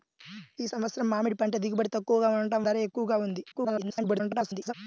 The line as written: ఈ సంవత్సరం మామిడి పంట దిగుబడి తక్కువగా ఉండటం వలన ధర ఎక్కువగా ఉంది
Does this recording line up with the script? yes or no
no